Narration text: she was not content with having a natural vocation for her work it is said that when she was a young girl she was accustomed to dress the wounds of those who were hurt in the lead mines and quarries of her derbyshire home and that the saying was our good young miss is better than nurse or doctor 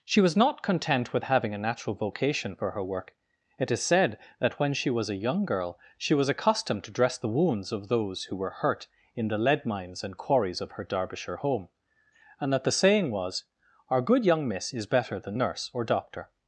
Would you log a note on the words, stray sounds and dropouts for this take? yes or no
no